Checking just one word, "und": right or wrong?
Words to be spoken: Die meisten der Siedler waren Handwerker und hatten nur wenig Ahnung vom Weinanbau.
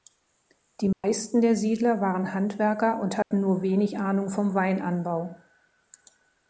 right